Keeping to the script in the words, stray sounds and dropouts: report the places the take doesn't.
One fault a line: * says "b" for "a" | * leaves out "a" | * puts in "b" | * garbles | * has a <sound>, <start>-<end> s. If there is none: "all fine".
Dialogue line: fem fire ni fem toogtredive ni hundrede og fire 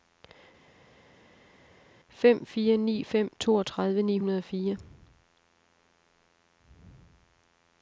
all fine